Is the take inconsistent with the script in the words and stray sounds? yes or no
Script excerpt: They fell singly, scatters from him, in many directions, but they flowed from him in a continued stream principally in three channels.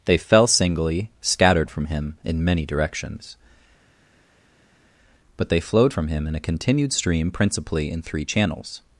yes